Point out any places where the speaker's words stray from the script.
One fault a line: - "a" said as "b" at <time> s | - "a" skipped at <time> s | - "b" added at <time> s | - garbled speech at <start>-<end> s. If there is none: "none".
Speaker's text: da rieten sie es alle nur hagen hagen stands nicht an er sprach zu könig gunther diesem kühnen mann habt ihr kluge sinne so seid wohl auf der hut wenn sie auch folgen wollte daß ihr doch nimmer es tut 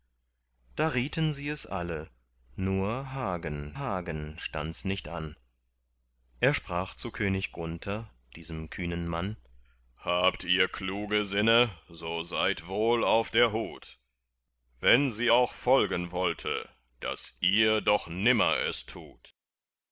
none